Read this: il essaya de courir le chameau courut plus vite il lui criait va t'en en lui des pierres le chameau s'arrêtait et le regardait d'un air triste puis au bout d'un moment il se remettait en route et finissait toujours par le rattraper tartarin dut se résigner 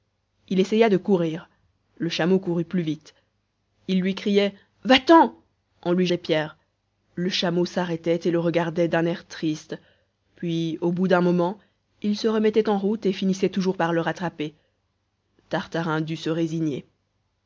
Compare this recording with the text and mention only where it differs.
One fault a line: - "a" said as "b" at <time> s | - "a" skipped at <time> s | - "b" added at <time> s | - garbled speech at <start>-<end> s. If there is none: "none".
none